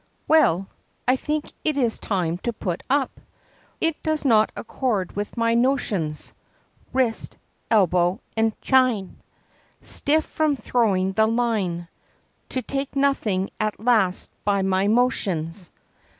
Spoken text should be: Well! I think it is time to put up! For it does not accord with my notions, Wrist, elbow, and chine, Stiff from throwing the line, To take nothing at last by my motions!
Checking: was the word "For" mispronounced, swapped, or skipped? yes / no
yes